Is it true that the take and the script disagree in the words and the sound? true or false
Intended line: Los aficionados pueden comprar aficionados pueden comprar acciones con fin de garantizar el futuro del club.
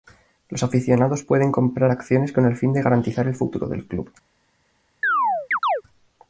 true